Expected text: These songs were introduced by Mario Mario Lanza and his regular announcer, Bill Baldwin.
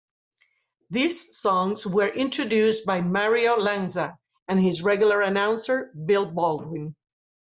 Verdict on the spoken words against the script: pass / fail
fail